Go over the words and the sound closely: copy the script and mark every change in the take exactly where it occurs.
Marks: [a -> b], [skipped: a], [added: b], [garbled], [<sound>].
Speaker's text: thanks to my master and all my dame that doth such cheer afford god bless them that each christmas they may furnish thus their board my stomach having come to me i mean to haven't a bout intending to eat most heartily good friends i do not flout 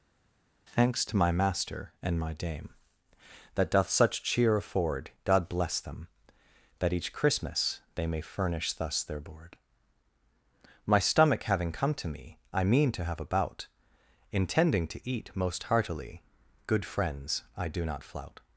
thanks to my master and [skipped: all] my dame that doth such cheer afford god bless them that each christmas they may furnish thus their board my stomach having come to me i mean to [haven't -> have] a bout intending to eat most heartily good friends i do not flout